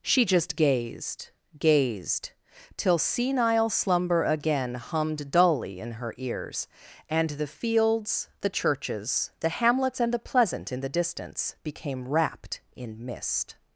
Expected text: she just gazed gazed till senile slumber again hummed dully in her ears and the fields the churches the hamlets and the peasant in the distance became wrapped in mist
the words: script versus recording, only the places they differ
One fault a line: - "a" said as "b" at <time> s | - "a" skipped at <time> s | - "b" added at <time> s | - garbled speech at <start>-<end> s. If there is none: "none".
- "peasant" said as "pleasant" at 10.2 s